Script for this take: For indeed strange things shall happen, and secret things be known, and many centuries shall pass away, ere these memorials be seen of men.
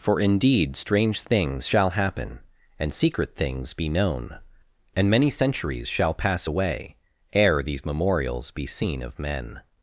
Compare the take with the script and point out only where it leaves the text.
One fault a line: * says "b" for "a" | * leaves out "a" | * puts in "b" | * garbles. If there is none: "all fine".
all fine